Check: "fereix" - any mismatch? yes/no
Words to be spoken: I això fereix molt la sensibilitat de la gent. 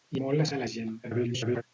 yes